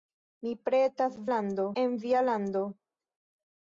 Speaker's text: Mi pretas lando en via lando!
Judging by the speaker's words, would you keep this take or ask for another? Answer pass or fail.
pass